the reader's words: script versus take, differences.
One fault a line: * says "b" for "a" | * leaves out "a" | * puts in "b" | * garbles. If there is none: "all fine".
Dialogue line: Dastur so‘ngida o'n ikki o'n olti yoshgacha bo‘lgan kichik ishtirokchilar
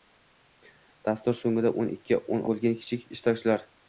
* leaves out "olti yoshgacha"